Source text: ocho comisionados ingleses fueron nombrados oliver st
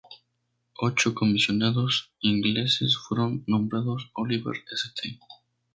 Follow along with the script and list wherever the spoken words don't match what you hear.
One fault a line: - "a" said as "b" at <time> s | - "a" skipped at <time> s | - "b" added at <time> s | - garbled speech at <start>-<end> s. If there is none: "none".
none